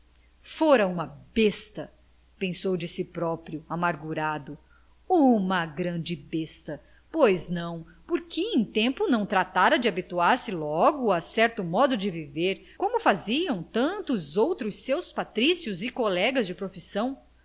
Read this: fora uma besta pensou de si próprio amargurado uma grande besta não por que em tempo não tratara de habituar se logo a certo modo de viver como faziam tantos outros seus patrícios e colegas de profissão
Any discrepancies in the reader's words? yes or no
yes